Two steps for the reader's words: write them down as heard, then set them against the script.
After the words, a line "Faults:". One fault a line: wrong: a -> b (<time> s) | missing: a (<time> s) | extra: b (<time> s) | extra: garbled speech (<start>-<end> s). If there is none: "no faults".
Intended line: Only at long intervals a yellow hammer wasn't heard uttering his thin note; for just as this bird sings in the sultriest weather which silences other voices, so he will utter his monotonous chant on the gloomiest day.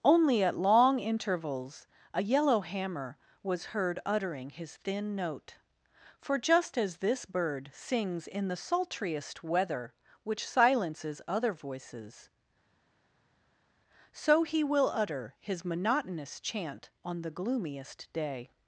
Only at long intervals a yellow hammer was heard uttering his thin note; for just as this bird sings in the sultriest weather which silences other voices, so he will utter his monotonous chant on the gloomiest day.
Faults:
wrong: wasn't -> was (3.4 s)